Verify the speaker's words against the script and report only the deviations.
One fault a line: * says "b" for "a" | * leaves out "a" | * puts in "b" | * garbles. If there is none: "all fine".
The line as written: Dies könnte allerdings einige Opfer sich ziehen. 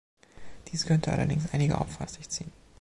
all fine